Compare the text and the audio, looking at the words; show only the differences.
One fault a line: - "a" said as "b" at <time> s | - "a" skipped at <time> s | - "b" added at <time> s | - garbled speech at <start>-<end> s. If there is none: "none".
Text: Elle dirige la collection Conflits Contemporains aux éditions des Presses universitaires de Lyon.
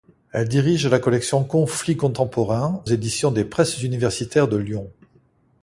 - "aux" skipped at 2.8 s